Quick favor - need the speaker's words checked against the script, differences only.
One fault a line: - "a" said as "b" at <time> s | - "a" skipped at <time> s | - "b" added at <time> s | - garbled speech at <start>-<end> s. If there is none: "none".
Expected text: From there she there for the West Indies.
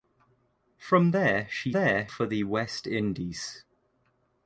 none